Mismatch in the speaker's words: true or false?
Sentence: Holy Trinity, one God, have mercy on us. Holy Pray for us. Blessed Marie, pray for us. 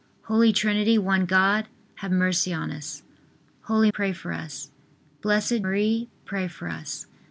false